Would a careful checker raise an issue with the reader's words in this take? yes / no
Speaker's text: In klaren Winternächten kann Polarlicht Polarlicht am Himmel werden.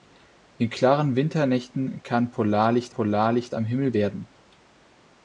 no